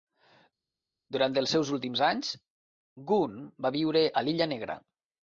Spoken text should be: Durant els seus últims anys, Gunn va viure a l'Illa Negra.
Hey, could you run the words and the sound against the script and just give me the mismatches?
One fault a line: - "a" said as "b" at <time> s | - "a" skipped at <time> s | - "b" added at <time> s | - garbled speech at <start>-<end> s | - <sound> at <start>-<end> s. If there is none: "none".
none